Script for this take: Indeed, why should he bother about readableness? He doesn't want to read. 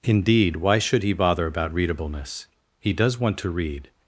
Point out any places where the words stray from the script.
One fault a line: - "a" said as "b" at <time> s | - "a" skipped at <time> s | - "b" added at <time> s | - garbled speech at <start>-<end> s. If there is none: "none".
- "doesn't" said as "does" at 2.9 s